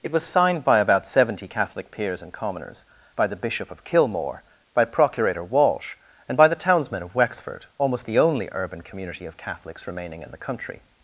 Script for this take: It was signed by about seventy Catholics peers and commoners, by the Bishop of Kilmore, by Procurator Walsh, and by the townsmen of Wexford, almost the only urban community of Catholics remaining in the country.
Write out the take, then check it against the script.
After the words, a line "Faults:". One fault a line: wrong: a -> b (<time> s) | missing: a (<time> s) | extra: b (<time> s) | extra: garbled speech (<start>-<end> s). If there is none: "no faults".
It was signed by about seventy Catholic peers and commoners, by the Bishop of Kilmore, by Procurator Walsh, and by the townsmen of Wexford, almost the only urban community of Catholics remaining in the country.
Faults:
wrong: Catholics -> Catholic (1.5 s)